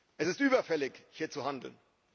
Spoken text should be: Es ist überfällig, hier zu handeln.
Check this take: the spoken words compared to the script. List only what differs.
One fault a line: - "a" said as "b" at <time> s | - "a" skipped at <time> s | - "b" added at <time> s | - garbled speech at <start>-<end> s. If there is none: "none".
none